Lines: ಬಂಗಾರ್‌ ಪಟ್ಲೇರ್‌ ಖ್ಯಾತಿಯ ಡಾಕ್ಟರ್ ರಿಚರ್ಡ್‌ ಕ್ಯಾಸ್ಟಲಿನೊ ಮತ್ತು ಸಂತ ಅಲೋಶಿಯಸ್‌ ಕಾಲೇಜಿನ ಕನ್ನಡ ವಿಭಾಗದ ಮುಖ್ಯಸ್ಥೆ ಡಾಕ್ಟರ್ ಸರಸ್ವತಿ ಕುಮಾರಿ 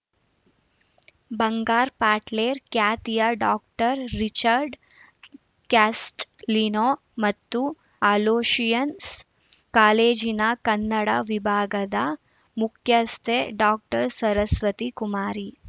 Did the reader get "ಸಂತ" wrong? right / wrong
wrong